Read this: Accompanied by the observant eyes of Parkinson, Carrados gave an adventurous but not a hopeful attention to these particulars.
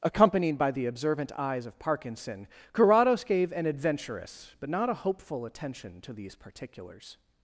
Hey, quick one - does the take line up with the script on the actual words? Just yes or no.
yes